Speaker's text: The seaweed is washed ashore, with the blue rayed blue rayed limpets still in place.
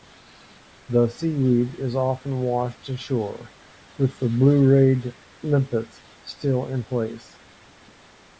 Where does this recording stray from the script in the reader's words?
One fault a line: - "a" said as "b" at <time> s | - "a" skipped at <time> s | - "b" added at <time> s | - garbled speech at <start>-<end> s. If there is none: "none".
- "often" added at 1.9 s
- "blue rayed" skipped at 5.1 s